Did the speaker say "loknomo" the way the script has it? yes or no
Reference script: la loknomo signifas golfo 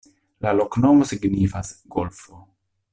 yes